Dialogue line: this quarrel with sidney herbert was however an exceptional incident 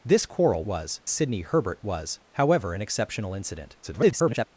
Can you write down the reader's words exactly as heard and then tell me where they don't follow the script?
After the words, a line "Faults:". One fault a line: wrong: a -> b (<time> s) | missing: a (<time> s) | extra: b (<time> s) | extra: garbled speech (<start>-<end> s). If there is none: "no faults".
this quarrel was sidney herbert was however an exceptional incident [garbled]
Faults:
wrong: with -> was (0.6 s)
extra: garbled speech (3.8-4.5 s)